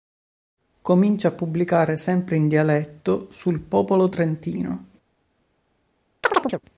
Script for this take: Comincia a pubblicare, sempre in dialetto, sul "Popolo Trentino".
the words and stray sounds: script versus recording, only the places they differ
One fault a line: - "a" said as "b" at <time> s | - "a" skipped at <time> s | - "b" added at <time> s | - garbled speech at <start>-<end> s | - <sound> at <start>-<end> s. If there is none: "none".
- chirp at 6.2-6.6 s